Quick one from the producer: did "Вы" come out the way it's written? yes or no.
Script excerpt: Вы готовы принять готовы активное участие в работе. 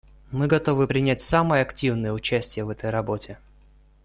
no